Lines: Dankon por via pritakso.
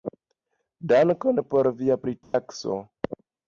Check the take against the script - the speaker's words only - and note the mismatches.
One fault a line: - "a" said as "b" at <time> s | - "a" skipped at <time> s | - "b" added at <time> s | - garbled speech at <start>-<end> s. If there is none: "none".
none